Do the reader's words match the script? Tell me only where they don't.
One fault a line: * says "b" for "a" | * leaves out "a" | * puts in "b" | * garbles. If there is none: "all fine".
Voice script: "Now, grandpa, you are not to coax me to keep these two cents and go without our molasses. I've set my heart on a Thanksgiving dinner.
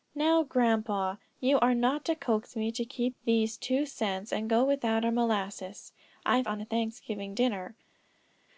* leaves out "set my heart"